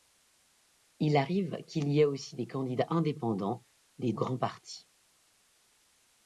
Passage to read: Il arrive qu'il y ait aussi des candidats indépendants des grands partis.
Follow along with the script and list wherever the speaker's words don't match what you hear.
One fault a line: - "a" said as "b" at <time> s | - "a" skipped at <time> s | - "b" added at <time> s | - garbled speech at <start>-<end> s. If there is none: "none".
none